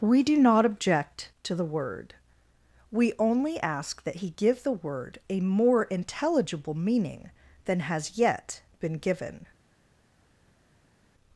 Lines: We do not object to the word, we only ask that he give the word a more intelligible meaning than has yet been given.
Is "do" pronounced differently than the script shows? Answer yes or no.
no